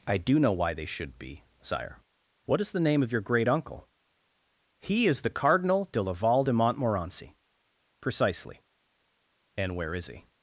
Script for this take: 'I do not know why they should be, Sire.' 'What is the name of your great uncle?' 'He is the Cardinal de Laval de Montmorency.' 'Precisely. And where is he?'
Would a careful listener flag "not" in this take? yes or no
yes